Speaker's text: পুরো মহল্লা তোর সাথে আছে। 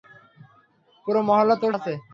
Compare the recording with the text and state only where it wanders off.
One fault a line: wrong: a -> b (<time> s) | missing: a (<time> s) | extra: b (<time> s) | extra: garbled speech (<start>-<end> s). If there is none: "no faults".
missing: সাথে (1.7 s)